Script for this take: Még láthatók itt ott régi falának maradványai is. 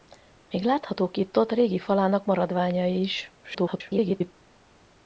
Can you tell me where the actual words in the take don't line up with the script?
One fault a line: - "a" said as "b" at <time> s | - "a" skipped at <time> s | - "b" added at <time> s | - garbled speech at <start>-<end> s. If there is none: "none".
- garbled speech at 3.4-4.3 s